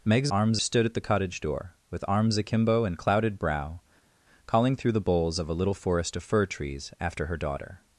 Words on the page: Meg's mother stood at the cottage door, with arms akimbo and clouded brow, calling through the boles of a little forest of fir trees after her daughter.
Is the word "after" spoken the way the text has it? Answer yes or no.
yes